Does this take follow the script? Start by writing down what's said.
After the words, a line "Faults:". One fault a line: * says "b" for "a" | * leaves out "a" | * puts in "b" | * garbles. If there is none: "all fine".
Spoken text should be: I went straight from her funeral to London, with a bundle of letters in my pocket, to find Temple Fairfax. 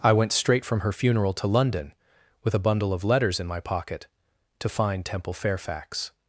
I went straight from her funeral to London, with a bundle of letters in my pocket, to find Temple Fairfax.
Faults:
all fine